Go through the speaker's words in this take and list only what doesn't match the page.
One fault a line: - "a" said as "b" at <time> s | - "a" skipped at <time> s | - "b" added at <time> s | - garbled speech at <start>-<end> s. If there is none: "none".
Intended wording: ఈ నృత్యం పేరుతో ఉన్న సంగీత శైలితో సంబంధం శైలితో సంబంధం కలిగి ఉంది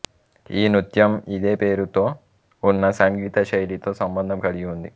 - "ఇదే" added at 1.3 s
- "శైలితో సంబంధం" skipped at 4.4 s